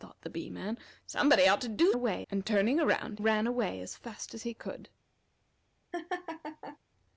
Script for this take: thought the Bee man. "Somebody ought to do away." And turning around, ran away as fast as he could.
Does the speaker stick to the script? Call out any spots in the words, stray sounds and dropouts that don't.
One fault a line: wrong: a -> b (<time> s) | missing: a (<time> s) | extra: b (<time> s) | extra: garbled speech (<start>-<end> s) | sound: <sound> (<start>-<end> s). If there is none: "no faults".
sound: laugh (5.9-6.8 s)